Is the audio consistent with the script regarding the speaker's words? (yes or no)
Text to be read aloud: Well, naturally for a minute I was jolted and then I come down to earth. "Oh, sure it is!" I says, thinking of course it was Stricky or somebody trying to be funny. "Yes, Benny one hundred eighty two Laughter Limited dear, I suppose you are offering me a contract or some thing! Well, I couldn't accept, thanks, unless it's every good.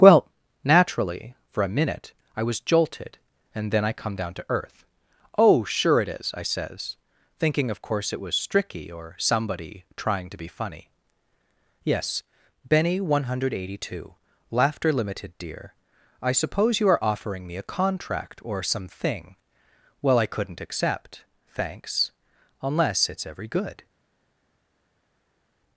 yes